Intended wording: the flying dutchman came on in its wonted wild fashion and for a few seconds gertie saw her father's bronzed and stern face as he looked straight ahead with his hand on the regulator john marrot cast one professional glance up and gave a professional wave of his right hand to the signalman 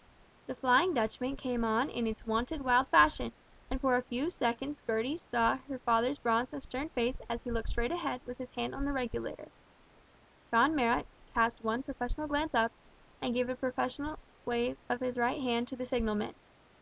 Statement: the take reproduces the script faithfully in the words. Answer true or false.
true